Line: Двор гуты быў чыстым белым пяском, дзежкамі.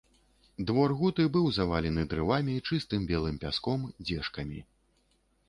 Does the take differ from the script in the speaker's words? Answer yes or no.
yes